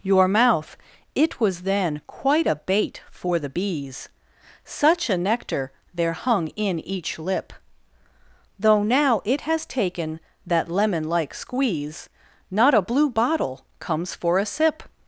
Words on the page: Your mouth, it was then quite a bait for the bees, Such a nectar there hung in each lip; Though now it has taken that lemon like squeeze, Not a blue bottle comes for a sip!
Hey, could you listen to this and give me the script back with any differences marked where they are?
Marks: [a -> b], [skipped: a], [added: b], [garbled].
Your mouth, it was then quite a bait for the bees, Such a nectar there hung in each lip; Though now it has taken that lemon like squeeze, Not a blue bottle comes for a sip!